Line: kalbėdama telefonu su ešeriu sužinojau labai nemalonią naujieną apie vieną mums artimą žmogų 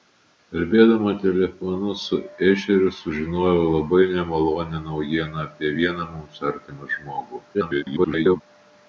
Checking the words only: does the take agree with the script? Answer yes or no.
no